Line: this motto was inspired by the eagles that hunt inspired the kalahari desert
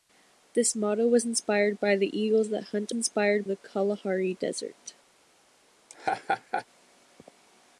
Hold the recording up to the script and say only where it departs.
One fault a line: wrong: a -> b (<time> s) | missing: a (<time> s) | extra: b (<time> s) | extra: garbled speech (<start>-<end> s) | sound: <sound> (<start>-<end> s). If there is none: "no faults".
sound: laugh (5.9-6.7 s)